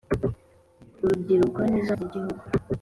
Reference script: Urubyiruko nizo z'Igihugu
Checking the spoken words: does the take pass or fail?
pass